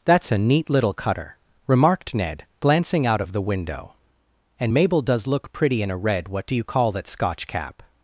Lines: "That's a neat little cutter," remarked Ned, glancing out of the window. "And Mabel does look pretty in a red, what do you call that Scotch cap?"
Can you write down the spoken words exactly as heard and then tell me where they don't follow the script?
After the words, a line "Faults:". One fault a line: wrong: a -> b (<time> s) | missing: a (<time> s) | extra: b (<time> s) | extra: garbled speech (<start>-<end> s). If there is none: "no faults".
"That's a neat little cutter," remarked Ned, glancing out of the window. "And Mabel does look pretty in a red, what do you call that Scotch cap?"
Faults:
no faults